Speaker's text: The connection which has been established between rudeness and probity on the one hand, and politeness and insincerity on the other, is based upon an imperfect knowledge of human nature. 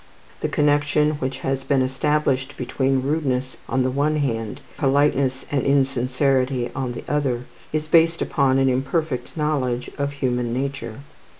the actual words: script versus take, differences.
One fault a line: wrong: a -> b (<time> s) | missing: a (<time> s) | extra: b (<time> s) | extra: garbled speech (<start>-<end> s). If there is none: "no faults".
missing: and probity (3.6 s)
missing: and (4.6 s)